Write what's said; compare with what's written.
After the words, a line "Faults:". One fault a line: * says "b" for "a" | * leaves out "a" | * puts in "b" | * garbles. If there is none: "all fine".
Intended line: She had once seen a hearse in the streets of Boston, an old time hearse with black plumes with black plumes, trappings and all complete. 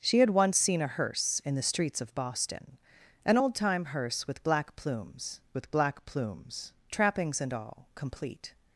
She had once seen a hearse in the streets of Boston, an old time hearse with black plumes with black plumes, trappings and all complete.
Faults:
all fine